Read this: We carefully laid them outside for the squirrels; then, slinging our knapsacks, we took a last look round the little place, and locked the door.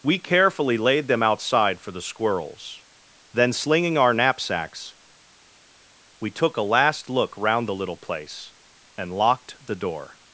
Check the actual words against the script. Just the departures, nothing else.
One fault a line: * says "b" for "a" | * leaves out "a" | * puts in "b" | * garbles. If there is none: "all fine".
all fine